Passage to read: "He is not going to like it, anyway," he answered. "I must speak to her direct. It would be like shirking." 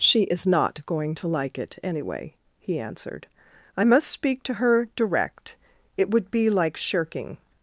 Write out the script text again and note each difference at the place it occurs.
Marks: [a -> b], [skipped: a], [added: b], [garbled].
["He -> She] is not going to like it, anyway," he answered. "I must speak to her direct. It would be like shirking."